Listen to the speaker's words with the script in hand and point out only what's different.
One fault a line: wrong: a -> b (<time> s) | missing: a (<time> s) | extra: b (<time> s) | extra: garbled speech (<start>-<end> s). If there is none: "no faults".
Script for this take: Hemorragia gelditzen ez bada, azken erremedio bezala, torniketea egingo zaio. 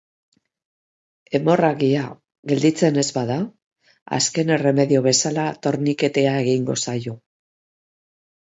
no faults